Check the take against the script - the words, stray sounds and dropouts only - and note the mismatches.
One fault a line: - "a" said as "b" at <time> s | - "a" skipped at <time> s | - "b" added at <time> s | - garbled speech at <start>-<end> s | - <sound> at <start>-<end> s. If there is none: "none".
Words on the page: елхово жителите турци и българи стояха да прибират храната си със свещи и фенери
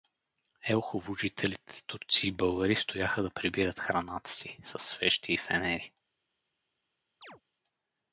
- chirp at 7.2-7.4 s